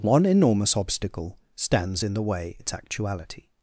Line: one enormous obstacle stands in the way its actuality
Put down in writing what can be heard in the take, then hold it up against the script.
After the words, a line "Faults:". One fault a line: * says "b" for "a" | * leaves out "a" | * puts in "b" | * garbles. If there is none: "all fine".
one enormous obstacle stands in the way its actuality
Faults:
all fine